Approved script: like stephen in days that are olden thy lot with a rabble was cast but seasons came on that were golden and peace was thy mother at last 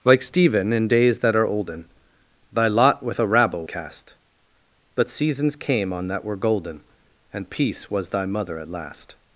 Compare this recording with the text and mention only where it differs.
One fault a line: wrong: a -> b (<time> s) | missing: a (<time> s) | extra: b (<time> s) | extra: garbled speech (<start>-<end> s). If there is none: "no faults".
missing: was (3.7 s)